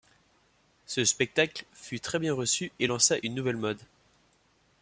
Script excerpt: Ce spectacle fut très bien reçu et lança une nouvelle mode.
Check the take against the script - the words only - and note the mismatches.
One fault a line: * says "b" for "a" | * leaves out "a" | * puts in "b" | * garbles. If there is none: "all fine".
all fine